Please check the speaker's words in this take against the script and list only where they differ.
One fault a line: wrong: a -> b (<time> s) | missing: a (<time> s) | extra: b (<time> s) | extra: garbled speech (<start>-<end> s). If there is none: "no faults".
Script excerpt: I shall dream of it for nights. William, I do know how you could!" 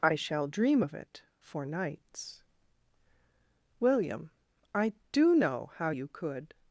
no faults